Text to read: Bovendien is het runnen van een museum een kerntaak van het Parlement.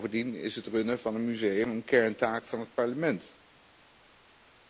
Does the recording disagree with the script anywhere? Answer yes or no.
no